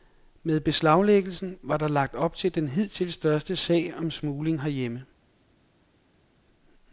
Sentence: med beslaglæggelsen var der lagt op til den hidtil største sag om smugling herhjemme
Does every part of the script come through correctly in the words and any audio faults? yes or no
yes